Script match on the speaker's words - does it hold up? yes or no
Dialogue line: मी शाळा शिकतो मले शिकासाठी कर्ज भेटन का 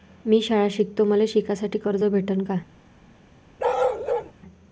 yes